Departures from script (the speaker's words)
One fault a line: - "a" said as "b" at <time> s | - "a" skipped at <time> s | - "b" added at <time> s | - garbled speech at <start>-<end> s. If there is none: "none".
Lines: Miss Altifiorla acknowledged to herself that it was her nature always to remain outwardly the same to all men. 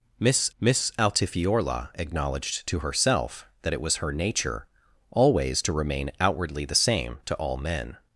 - "miss" added at 0.6 s